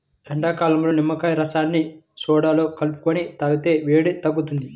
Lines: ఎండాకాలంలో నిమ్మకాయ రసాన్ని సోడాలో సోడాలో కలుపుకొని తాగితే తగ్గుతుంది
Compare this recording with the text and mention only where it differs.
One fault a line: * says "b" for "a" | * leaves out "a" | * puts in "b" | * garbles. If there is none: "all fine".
* leaves out "సోడాలో"
* puts in "వేడి"